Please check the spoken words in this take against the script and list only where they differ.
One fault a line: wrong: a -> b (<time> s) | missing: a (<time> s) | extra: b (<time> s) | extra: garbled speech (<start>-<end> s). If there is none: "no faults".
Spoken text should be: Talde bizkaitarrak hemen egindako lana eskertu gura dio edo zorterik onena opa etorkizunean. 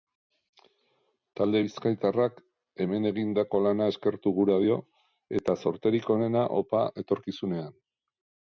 wrong: edo -> eta (5.4 s)